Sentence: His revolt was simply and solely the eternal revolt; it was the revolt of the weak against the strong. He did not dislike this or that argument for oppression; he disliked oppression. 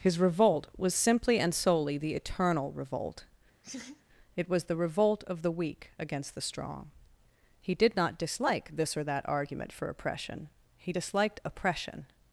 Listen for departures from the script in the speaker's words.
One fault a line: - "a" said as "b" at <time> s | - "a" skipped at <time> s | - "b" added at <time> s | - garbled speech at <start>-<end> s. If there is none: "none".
none